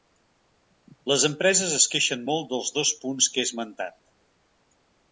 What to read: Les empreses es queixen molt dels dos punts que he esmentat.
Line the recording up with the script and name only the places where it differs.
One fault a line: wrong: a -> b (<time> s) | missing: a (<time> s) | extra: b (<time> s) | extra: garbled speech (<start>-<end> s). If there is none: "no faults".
no faults